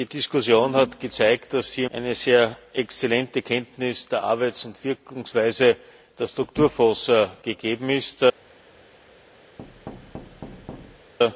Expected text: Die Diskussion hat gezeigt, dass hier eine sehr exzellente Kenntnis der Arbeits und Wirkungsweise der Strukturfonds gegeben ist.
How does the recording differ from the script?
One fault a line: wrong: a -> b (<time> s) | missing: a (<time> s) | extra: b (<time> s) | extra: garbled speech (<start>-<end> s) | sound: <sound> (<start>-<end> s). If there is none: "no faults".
sound: thud (9.6-11.1 s)